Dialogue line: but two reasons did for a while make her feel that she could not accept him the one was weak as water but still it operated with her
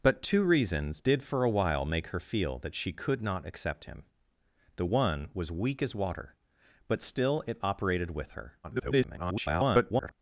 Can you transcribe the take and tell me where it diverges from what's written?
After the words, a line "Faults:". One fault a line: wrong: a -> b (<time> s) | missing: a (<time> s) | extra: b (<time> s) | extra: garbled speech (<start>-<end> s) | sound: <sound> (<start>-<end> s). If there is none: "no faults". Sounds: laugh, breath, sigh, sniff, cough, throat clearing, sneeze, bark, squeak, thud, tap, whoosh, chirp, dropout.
but two reasons did for a while make her feel that she could not accept him the one was weak as water but still it operated with her [garbled]
Faults:
extra: garbled speech (8.6-10.1 s)